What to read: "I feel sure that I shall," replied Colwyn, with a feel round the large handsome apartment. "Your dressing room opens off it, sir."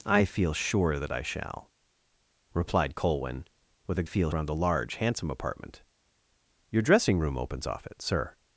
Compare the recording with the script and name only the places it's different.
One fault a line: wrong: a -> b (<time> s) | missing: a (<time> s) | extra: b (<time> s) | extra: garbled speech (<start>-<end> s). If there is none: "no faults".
no faults